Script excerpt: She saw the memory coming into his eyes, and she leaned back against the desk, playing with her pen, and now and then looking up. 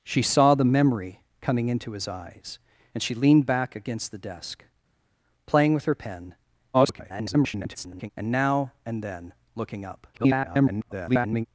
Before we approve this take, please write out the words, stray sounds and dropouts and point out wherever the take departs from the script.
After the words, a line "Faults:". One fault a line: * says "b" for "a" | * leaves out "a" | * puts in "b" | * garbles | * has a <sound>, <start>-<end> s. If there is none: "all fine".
She saw the memory coming into his eyes, and she leaned back against the desk, playing with her pen, [garbled] and now and then looking up. [garbled]
Faults:
* garbles
* garbles